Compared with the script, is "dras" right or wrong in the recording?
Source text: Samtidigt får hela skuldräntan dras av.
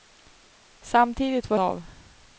wrong